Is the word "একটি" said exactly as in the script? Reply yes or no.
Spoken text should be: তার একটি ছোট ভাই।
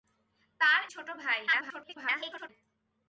no